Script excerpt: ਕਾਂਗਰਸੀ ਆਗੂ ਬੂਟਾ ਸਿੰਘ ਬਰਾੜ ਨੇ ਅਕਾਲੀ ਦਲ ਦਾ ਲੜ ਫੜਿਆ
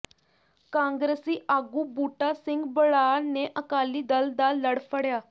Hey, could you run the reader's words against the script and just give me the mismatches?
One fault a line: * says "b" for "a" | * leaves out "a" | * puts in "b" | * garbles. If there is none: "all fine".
all fine